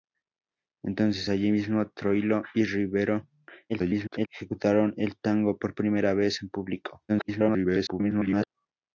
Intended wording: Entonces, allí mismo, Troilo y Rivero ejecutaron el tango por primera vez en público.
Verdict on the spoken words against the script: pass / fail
fail